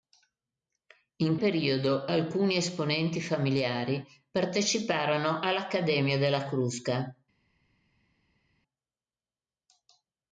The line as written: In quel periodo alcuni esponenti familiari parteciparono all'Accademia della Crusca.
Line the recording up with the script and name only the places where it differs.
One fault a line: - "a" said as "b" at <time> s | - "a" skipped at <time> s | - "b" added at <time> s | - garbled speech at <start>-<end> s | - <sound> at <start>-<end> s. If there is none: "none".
- "quel" skipped at 1.4 s